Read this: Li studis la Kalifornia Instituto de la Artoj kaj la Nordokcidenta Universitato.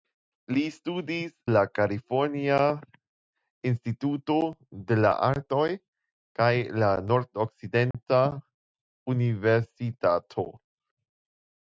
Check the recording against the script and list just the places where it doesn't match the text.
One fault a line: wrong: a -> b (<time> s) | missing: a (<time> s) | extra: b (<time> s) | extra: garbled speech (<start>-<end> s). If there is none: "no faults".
no faults